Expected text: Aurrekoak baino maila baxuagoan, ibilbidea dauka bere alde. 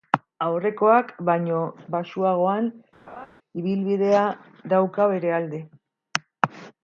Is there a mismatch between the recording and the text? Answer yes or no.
yes